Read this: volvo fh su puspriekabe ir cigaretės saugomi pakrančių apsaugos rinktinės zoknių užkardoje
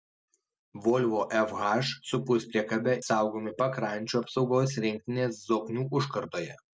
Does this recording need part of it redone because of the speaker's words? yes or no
yes